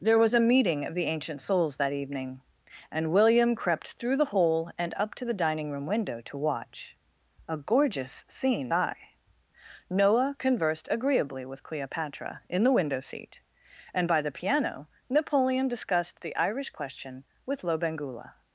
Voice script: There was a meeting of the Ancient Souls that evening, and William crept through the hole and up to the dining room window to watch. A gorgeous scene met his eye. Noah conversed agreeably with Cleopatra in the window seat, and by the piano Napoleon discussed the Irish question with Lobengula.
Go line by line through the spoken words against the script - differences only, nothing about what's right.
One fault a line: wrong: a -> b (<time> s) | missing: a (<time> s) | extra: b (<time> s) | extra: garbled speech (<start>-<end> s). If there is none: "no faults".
missing: met his (8.7 s)